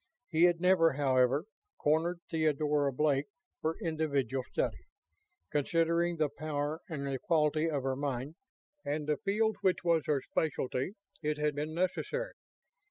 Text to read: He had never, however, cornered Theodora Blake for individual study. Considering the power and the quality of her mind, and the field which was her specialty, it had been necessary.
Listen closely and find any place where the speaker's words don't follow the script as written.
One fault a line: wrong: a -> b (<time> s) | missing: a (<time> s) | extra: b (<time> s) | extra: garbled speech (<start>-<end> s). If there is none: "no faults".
no faults